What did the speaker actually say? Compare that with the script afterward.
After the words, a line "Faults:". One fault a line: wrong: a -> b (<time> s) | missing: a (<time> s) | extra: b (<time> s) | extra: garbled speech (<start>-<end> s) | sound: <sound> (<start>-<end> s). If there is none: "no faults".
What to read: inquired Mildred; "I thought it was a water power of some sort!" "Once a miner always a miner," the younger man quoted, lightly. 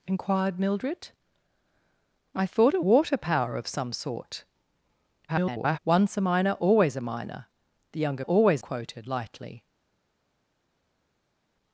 inquired Mildred; "I thought it water power of some sort!" [garbled] "Once a miner always a miner," the younger always quoted, lightly.
Faults:
missing: was a (2.8 s)
extra: garbled speech (5.3-5.8 s)
wrong: man -> always (8.2 s)